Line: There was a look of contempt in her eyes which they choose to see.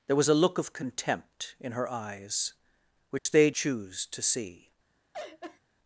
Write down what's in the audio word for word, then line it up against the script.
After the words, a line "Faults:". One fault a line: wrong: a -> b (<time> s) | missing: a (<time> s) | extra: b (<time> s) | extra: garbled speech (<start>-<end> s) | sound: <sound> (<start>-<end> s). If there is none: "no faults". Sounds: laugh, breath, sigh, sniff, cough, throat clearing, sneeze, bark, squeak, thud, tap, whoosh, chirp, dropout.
There was a look of contempt in her eyes which they choose to see.
Faults:
sound: dropout (3.2-3.3 s)
sound: laugh (5.1-5.6 s)